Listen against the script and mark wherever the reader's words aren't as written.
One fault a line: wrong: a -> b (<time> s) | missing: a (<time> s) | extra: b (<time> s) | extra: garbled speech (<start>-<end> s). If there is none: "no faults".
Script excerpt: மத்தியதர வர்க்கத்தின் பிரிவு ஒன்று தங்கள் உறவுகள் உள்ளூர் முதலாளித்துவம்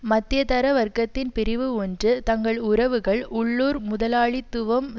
no faults